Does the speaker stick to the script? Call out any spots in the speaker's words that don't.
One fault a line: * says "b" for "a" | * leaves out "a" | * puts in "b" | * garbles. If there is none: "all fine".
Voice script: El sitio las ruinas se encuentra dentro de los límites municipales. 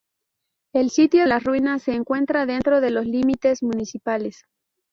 all fine